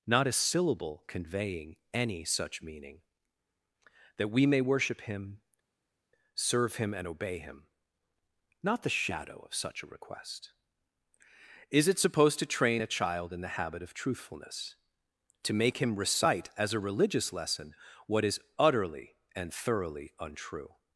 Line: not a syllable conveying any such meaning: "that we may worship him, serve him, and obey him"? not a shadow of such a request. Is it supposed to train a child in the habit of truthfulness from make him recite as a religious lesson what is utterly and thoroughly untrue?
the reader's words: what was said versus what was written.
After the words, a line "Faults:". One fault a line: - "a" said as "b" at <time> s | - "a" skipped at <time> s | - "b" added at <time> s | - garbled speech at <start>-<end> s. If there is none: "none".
not a syllable conveying any such meaning: "that we may worship him, serve him, and obey him"? not the shadow of such a request. Is it supposed to train a child in the habit of truthfulness to make him recite as a religious lesson what is utterly and thoroughly untrue?
Faults:
- "a" said as "the" at 8.8 s
- "from" said as "to" at 15.4 s